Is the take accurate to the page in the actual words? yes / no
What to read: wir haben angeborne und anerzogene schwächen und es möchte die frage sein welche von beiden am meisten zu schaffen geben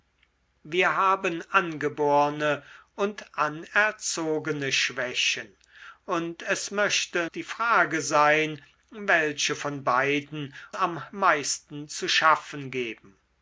yes